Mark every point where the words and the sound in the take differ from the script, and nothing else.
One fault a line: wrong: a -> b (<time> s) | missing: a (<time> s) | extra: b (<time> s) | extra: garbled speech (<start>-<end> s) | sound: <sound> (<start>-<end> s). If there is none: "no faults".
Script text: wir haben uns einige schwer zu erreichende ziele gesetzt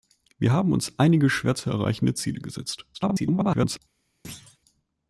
extra: garbled speech (2.9-3.8 s)
sound: thud (4.2-4.6 s)